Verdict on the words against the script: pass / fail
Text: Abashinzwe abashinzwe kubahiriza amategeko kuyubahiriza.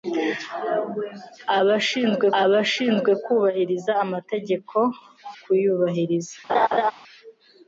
pass